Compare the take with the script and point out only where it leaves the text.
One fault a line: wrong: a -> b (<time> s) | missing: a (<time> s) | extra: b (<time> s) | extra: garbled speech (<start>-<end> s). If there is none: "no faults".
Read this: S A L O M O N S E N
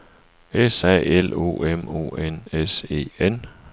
no faults